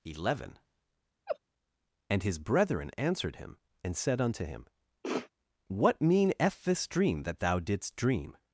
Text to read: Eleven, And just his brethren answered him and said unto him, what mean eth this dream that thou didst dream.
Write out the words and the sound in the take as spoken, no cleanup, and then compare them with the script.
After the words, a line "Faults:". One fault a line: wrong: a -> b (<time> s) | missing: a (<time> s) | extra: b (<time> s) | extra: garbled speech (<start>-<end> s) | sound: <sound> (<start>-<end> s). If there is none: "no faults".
Eleven, And his brethren answered him and said unto him, what mean eth this dream that thou didst dream.
Faults:
sound: laugh (1.3-1.4 s)
missing: just (2.2 s)
sound: sniff (5.0-5.3 s)